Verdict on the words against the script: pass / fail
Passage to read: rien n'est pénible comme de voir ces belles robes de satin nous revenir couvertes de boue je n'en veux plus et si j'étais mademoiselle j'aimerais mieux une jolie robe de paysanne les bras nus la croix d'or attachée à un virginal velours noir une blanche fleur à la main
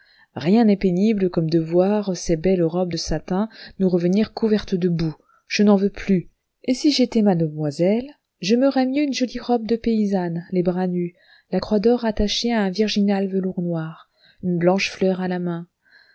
pass